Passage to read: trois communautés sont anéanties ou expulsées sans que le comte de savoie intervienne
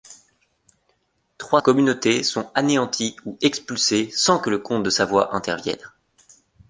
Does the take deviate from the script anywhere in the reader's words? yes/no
no